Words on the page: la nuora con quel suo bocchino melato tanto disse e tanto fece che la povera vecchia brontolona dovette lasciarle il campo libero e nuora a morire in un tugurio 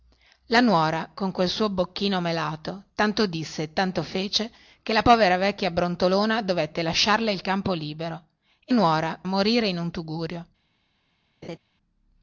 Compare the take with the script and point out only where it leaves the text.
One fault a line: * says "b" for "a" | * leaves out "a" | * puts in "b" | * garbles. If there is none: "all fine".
all fine